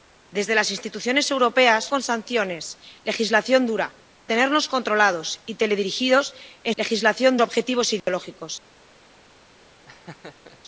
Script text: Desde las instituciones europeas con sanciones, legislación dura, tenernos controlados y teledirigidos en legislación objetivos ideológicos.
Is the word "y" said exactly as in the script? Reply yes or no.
yes